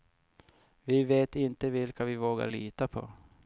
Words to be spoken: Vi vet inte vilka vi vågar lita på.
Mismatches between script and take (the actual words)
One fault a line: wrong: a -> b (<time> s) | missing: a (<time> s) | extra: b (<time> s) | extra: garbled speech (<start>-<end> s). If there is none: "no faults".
no faults